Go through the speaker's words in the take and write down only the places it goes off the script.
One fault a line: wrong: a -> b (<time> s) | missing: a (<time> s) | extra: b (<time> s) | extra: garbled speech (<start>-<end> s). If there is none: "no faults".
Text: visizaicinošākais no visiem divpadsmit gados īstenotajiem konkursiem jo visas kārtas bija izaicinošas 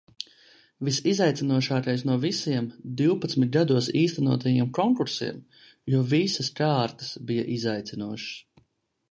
no faults